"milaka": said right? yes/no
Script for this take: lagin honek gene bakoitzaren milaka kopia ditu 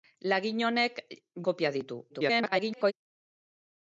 no